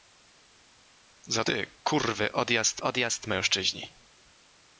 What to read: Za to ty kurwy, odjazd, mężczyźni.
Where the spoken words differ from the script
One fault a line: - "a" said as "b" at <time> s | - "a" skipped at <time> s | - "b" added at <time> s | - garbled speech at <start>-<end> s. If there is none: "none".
- "to" skipped at 1.4 s
- "odjazd" added at 2.8 s